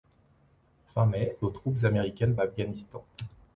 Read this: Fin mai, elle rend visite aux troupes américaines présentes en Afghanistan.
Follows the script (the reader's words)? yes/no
no